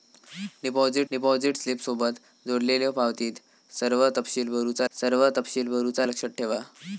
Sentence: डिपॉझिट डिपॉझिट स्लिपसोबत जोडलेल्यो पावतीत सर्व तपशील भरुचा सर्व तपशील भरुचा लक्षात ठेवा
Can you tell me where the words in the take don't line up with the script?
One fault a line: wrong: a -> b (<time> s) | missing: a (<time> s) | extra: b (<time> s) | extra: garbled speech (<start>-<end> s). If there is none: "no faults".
no faults